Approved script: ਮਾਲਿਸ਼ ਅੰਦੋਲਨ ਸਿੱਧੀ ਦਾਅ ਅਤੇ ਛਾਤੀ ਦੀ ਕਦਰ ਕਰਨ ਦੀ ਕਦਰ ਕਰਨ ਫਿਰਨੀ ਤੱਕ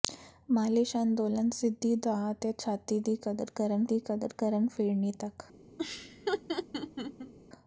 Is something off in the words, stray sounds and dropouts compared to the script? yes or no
yes